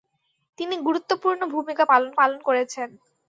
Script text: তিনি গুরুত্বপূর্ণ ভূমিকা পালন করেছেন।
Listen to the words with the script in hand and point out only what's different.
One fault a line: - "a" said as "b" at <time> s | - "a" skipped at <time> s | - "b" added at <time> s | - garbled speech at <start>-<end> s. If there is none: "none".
- "পালন" added at 2.2 s